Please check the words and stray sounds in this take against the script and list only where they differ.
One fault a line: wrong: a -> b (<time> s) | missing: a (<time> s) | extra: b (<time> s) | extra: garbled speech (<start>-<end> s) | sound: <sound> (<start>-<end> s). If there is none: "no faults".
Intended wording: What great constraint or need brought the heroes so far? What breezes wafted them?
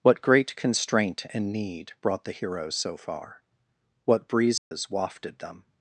wrong: or -> and (1.3 s)
sound: dropout (4.6-4.7 s)